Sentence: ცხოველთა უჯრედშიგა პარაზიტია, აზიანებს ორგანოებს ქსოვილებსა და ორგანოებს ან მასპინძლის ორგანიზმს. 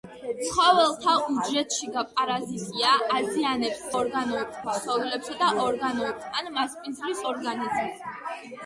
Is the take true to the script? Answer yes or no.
yes